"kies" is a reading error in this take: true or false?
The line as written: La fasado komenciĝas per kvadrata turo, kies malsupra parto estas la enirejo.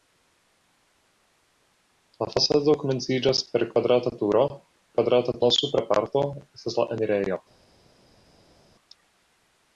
true